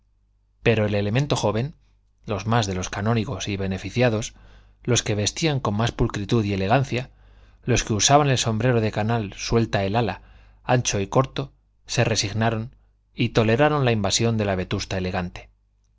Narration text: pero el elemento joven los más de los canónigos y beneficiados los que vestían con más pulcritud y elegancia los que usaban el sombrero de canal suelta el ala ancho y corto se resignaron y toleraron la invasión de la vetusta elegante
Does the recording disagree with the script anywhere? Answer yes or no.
no